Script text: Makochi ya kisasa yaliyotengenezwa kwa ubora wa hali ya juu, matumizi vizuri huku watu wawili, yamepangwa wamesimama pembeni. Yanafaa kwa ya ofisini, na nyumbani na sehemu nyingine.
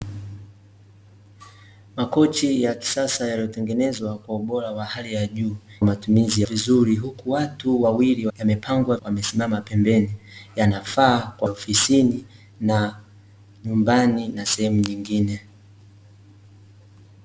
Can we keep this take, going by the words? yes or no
yes